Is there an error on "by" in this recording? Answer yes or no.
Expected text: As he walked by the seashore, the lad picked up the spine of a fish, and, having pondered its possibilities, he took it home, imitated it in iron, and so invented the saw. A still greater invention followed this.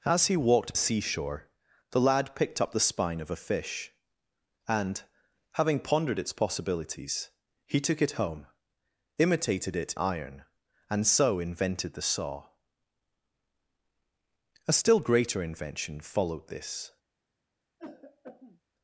yes